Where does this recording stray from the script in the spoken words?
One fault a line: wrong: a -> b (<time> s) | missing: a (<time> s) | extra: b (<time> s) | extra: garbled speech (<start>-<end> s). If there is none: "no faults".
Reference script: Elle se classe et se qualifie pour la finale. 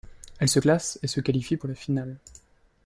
no faults